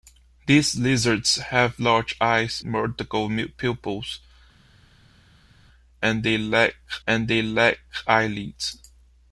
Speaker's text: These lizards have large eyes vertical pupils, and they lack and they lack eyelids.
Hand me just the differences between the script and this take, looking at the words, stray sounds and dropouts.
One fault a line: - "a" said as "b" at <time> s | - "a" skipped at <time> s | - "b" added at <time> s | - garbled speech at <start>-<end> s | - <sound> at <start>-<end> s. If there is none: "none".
none